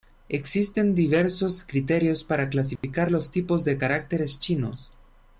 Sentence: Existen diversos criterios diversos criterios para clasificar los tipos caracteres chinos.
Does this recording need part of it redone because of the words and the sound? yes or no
yes